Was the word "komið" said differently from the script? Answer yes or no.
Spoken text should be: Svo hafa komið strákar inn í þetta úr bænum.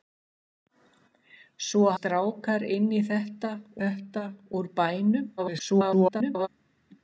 yes